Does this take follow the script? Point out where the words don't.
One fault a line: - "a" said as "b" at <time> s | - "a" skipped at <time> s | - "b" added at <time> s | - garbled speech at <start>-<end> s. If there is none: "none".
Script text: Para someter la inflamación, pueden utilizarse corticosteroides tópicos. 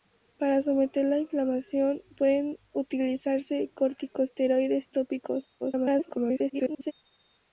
- garbled speech at 5.6-6.9 s